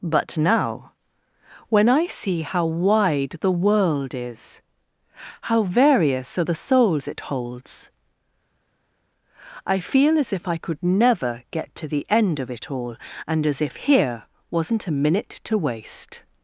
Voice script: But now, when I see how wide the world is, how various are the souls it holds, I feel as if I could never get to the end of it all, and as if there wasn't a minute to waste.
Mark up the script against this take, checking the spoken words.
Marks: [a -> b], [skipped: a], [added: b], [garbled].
But now, when I see how wide the world is, how various are the souls it holds, I feel as if I could never get to the end of it all, and as if [there -> here] wasn't a minute to waste.